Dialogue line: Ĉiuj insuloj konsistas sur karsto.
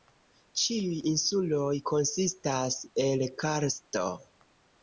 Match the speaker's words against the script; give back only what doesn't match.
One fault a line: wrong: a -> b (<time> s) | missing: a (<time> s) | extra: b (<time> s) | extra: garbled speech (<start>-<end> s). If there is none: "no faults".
wrong: sur -> el (3.1 s)